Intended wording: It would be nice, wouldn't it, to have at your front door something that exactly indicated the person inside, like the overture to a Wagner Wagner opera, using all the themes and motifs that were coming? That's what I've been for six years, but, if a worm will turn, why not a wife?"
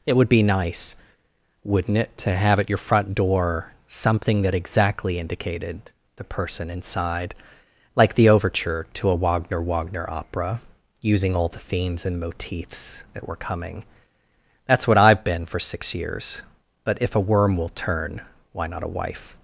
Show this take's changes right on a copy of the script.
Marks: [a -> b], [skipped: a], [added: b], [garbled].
It would be nice, wouldn't it, to have at your front door something that exactly indicated the person inside, like the overture to a Wagner Wagner opera, using all the themes and motifs that were coming? That's what I've been for six years, but, if a worm will turn, why not a wife?"